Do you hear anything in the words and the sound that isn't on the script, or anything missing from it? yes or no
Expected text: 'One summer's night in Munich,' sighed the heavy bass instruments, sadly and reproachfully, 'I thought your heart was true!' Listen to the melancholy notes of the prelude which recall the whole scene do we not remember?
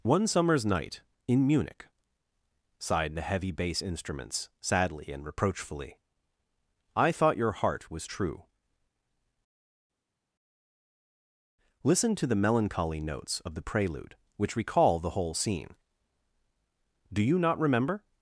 yes